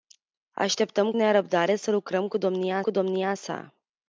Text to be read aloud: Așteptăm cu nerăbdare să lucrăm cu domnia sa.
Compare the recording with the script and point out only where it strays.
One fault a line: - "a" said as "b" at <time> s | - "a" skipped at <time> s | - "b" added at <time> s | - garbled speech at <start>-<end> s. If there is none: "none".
- "cu" skipped at 1.1 s
- "cu domnia" added at 2.8 s